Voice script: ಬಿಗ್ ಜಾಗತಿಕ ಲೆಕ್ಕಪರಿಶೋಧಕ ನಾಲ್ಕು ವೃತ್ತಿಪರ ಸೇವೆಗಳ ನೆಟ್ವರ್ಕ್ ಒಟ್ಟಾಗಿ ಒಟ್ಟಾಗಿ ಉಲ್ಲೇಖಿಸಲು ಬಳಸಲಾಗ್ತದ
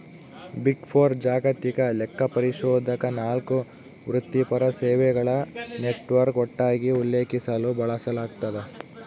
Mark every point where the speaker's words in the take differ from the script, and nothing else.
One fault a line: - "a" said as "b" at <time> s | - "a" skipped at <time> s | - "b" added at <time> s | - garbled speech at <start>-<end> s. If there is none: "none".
- "ಫೋರ್" added at 0.9 s
- "ಒಟ್ಟಾಗಿ" skipped at 6.9 s